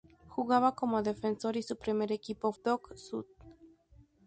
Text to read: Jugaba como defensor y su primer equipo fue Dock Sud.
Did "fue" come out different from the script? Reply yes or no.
yes